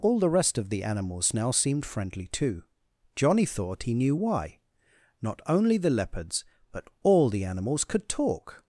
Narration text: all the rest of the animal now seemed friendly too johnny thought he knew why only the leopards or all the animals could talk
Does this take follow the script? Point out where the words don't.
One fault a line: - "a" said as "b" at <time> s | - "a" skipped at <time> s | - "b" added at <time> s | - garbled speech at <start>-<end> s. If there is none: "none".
- "animal" said as "animals" at 0.8 s
- "not" added at 5.2 s
- "or" said as "but" at 6.7 s